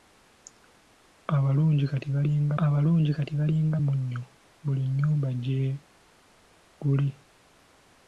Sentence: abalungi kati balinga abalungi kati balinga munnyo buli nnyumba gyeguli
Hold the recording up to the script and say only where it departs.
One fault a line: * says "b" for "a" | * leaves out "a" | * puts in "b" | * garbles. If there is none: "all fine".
all fine